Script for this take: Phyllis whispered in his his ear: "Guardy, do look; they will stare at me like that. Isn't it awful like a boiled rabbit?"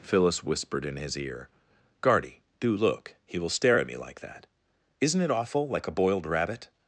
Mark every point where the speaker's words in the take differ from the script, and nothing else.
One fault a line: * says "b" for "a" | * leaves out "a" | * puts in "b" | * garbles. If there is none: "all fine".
* leaves out "his"
* says "he" for "they"